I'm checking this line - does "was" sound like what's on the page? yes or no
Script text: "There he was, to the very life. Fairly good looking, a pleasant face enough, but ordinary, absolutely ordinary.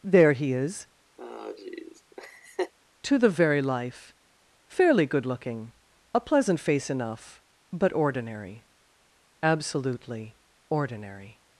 no